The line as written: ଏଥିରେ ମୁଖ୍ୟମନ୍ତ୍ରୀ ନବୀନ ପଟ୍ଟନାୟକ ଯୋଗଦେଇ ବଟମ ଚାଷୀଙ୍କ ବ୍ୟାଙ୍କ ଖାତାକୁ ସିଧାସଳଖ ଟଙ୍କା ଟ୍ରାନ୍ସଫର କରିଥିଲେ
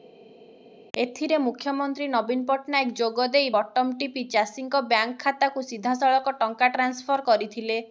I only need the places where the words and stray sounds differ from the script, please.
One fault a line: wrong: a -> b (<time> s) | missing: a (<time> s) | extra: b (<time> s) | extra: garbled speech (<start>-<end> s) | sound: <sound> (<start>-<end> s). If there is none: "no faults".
extra: ଟିପି (4.0 s)